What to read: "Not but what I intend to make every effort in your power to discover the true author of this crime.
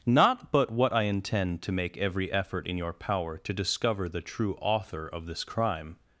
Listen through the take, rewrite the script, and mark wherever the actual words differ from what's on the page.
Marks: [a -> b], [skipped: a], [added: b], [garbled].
"Not but what I intend to make every effort in your power to discover the true author of this crime.